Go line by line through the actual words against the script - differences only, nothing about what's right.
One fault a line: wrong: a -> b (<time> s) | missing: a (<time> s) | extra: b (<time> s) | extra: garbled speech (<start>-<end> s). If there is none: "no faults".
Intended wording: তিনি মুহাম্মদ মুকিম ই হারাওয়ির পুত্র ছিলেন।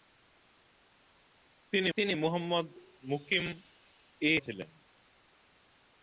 extra: তিনি (2.0 s)
missing: হারাওয়ির পুত্র (4.3 s)